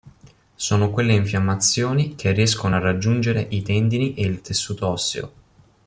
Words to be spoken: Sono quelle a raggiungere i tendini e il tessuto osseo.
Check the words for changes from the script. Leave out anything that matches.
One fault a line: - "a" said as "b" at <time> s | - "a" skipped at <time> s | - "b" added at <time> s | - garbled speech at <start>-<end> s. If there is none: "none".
- "infiammazioni che riescono" added at 1.1 s